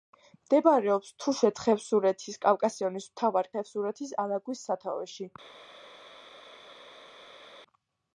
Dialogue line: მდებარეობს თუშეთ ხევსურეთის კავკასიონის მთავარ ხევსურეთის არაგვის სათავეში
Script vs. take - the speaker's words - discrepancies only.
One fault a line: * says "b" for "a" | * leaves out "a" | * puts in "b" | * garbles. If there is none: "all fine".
all fine